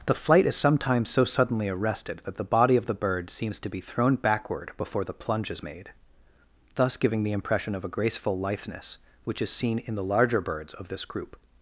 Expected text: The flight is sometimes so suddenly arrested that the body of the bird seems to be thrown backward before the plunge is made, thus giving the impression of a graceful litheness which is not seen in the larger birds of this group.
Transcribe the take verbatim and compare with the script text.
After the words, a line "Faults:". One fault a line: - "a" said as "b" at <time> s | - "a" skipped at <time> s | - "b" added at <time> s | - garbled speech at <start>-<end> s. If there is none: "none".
The flight is sometimes so suddenly arrested that the body of the bird seems to be thrown backward before the plunge is made, thus giving the impression of a graceful litheness which is seen in the larger birds of this group.
Faults:
- "not" skipped at 9.5 s